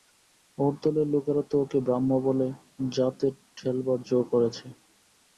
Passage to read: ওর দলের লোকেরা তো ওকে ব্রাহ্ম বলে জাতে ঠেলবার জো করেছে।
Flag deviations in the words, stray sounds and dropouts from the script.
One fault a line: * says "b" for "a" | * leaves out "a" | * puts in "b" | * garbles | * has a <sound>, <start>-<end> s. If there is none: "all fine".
all fine